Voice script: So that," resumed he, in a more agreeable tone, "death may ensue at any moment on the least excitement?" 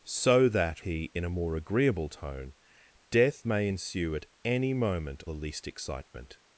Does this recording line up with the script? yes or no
no